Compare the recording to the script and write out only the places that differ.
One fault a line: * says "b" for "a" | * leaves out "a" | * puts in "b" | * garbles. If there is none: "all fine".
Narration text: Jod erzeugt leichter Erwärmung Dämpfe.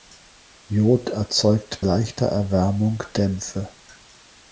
all fine